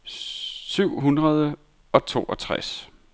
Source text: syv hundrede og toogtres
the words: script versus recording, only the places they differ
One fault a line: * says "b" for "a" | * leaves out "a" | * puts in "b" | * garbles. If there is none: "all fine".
all fine